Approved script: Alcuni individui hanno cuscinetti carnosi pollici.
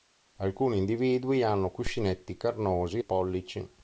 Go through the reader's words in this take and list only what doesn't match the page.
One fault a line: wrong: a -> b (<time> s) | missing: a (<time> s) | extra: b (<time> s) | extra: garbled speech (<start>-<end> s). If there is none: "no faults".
no faults